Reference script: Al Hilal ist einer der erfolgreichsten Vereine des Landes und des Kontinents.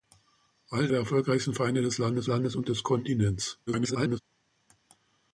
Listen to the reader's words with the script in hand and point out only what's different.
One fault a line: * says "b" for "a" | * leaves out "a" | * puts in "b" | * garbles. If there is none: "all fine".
* leaves out "Hilal ist einer"
* puts in "Landes"
* garbles